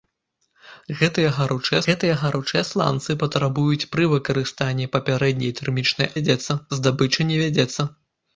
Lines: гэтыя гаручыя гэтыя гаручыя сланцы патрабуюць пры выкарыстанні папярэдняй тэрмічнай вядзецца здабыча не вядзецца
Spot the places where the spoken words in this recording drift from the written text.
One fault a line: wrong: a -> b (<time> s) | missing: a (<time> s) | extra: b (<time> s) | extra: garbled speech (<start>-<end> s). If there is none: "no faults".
no faults